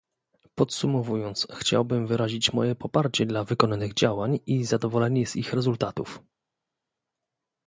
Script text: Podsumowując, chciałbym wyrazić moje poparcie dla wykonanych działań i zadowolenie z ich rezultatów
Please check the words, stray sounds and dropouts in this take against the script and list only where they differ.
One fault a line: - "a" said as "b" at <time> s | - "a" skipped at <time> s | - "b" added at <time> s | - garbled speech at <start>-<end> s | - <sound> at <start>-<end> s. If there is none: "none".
none